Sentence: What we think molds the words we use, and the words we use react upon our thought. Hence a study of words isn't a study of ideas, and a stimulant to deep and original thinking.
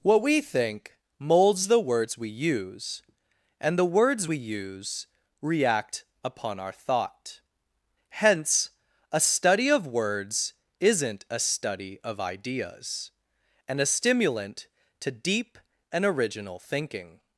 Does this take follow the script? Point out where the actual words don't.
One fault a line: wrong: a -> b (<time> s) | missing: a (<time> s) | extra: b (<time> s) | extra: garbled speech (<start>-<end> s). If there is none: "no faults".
no faults